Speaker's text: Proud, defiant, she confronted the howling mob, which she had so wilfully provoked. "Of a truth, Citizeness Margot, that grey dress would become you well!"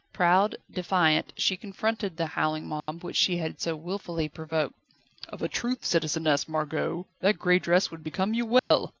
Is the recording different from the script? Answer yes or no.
no